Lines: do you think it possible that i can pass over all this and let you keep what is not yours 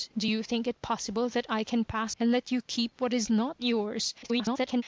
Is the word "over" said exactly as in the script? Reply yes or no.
no